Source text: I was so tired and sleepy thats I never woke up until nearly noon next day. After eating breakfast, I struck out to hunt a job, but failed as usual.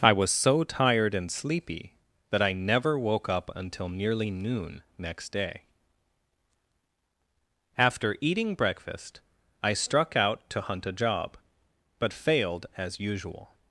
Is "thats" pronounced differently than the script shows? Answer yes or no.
yes